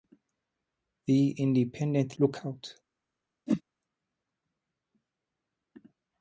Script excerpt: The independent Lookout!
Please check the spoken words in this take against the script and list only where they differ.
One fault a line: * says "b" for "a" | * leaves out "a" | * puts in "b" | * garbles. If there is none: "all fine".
all fine